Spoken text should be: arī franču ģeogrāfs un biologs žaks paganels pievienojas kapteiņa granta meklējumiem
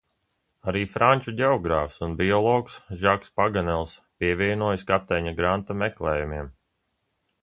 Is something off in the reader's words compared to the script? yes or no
no